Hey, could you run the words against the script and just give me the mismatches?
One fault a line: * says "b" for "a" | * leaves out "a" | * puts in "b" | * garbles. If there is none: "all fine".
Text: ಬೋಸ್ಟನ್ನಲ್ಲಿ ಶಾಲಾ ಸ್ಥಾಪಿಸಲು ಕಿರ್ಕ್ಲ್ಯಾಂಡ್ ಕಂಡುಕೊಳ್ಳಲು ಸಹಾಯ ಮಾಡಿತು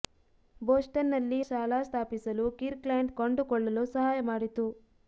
all fine